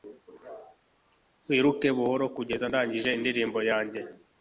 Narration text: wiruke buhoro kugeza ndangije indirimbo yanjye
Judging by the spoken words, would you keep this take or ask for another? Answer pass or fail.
pass